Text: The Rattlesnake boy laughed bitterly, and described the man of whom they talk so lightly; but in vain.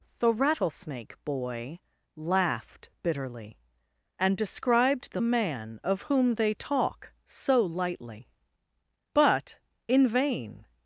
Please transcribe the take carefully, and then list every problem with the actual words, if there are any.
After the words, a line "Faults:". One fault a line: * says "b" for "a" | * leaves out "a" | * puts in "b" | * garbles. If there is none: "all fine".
The Rattlesnake boy laughed bitterly, and described the man of whom they talk so lightly; but in vain.
Faults:
all fine